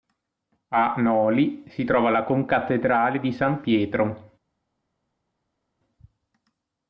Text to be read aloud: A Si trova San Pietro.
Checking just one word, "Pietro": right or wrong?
right